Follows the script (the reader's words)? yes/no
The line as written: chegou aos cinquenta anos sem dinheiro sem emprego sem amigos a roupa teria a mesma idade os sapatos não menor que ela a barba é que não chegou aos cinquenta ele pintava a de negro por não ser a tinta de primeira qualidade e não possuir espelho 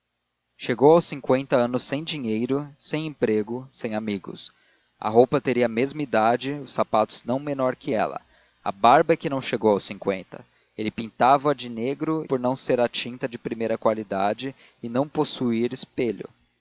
yes